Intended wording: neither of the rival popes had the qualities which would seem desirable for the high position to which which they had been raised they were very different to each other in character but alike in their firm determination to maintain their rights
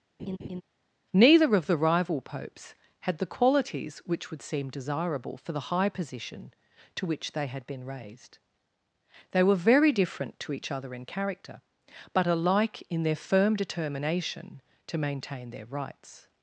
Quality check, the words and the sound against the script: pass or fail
fail